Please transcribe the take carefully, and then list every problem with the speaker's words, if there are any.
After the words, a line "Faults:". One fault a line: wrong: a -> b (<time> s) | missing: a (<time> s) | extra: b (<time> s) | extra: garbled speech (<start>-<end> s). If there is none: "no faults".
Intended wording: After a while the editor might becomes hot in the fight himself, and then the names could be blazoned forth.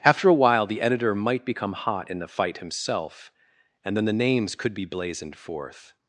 After a while the editor might become hot in the fight himself, and then the names could be blazoned forth.
Faults:
wrong: becomes -> become (1.4 s)